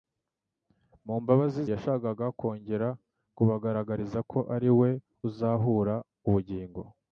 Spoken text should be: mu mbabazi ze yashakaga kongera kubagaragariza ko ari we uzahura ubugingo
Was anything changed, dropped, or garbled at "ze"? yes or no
yes